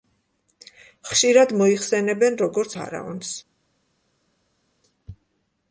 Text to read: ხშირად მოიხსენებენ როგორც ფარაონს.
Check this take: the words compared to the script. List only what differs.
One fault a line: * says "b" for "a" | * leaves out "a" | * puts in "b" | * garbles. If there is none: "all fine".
all fine